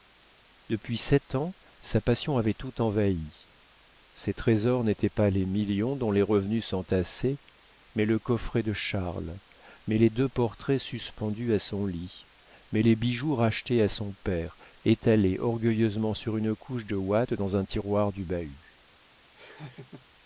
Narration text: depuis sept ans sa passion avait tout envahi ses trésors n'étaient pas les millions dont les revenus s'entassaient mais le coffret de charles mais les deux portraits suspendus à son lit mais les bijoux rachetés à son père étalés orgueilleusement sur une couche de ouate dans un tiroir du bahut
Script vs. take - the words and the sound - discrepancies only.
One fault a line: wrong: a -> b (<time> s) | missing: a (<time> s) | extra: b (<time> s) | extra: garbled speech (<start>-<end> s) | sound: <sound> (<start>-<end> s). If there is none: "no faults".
sound: laugh (19.3-20.1 s)